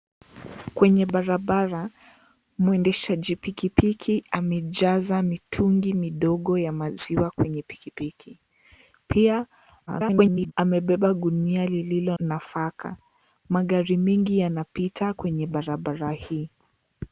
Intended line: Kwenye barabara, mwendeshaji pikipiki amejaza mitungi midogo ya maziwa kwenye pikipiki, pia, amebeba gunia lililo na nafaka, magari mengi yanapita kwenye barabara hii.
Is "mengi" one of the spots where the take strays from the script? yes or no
no